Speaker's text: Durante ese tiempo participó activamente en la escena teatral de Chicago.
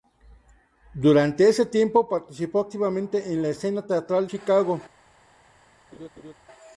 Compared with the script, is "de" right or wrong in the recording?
wrong